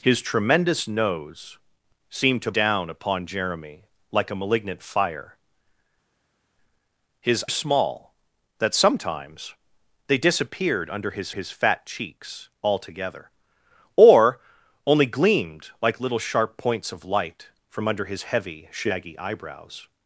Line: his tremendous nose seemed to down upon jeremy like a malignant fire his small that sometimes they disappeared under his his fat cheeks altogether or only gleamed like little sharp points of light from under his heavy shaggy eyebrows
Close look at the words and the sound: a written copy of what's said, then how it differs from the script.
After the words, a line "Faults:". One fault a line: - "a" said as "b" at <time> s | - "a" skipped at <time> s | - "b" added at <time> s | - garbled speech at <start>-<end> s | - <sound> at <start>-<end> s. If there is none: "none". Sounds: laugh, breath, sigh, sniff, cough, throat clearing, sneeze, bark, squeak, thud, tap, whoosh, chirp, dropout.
his tremendous nose seemed to down upon jeremy like a malignant fire his small that sometimes they disappeared under his his fat cheeks altogether or only gleamed like little sharp points of light from under his heavy shaggy eyebrows
Faults:
none